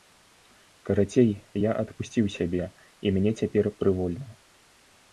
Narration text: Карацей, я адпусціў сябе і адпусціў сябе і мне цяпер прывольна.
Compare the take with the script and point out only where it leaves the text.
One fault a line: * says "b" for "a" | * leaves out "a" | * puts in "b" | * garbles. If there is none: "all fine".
* leaves out "адпусціў сябе і"